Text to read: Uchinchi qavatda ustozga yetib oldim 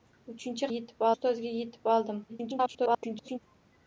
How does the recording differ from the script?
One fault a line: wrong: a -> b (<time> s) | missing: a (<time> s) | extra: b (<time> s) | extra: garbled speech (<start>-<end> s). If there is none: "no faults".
wrong: qavatda -> yetib (0.7 s)
extra: garbled speech (2.3-3.4 s)